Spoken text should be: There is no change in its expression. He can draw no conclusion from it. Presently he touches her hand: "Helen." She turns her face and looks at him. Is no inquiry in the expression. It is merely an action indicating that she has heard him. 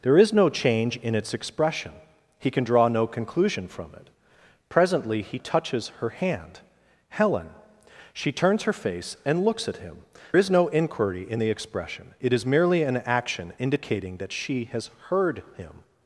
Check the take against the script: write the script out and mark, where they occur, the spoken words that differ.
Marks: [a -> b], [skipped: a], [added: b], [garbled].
There is no change in its expression. He can draw no conclusion from it. Presently he touches her hand: "Helen." She turns her face and looks at him. Is no inquiry in the expression. It is merely an action indicating that she has heard him.